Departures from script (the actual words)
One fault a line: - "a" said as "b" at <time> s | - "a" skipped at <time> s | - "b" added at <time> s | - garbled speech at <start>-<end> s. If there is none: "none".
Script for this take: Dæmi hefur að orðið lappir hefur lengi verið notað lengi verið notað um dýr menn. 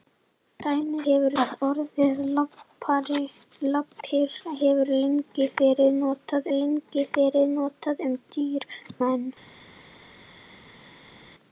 none